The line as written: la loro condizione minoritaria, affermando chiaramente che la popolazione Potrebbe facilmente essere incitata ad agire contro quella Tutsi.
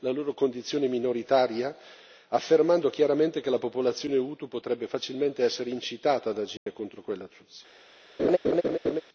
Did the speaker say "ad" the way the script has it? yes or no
yes